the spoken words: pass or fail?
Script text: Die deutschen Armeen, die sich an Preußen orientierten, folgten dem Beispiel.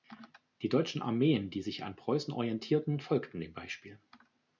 pass